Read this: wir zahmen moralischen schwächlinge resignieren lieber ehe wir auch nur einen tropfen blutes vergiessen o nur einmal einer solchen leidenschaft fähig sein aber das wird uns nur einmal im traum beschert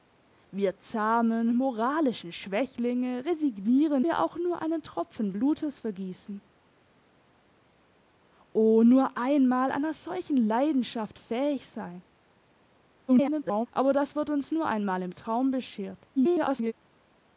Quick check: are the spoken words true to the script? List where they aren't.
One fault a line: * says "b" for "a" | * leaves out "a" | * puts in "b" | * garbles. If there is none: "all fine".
* leaves out "lieber ehe"
* garbles
* garbles